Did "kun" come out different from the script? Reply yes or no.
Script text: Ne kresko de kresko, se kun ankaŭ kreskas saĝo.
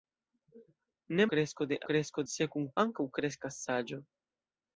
no